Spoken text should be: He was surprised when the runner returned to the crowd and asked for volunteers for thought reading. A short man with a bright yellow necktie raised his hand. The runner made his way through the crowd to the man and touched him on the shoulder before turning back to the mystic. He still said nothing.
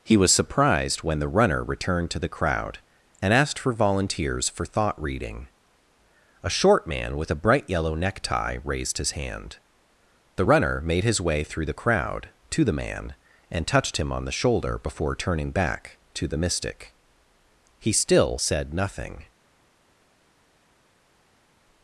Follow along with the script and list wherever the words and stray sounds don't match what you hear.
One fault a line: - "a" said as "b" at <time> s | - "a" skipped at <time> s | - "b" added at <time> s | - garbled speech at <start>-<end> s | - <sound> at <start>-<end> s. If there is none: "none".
none